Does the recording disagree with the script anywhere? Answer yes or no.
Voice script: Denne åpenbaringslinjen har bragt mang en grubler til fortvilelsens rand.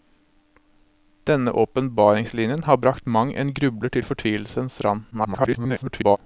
yes